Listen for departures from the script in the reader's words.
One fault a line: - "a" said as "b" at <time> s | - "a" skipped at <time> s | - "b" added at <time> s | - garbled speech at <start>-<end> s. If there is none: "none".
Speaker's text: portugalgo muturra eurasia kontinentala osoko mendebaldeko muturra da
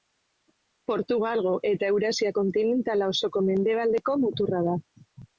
- "muturra" said as "eta" at 1.7 s